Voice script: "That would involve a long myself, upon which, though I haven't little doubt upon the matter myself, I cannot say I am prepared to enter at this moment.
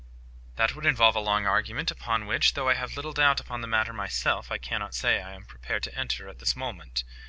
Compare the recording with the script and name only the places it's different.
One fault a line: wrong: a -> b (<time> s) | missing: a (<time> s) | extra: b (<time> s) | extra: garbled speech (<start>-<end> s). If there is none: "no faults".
wrong: myself -> argument (1.4 s)
wrong: haven't -> have (2.7 s)